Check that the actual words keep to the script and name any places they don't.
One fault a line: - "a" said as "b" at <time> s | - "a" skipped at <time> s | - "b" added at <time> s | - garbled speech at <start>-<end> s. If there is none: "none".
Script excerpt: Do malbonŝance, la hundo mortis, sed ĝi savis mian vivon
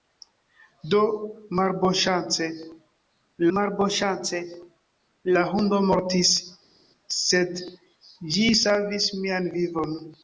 - "malbonŝance" added at 3.6 s